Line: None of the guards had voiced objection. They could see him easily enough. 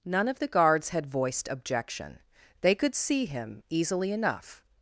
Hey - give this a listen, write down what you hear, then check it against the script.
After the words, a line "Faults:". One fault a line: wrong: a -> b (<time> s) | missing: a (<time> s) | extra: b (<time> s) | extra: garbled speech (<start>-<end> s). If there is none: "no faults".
None of the guards had voiced objection. They could see him easily enough.
Faults:
no faults